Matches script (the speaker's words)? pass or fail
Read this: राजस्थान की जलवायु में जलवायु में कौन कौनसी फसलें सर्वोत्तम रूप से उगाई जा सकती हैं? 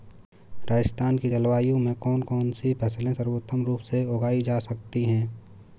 fail